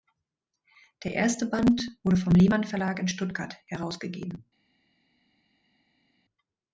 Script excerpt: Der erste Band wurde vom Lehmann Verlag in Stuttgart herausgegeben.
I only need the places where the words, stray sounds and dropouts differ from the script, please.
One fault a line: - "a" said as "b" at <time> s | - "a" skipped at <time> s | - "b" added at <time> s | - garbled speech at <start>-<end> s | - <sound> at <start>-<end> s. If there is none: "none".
none